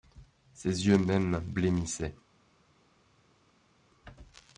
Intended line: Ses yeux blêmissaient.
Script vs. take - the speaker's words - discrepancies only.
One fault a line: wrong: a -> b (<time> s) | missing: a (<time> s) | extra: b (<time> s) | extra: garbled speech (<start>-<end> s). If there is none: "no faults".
extra: mêmes (1.0 s)